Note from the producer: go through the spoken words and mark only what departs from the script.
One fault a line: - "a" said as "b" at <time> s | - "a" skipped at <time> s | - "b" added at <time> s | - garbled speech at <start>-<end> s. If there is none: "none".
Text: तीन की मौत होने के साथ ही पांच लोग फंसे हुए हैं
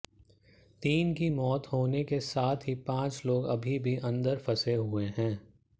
- "अभी भी अंदर" added at 3.5 s